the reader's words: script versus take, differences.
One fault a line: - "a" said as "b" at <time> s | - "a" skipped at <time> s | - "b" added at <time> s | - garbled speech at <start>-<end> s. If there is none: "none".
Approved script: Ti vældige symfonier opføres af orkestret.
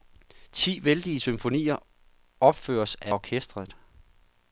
none